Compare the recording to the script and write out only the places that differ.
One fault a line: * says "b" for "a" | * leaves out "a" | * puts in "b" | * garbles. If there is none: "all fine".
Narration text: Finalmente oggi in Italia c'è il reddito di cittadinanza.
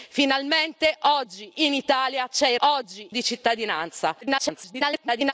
* says "oggi" for "reddito"
* garbles